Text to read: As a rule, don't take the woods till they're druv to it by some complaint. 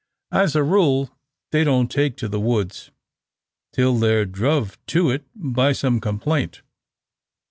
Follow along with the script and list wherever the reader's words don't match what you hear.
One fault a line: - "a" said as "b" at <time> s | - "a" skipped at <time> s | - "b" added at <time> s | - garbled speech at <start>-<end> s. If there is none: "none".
- "they" added at 1.5 s
- "to" added at 2.2 s